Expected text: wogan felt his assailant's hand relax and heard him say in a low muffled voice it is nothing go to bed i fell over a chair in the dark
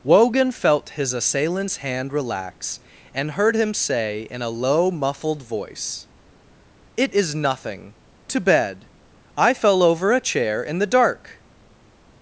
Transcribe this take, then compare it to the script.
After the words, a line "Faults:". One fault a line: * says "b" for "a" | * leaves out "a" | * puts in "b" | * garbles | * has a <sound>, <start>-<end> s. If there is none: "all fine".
wogan felt his assailant's hand relax and heard him say in a low muffled voice it is nothing to bed i fell over a chair in the dark
Faults:
* leaves out "go"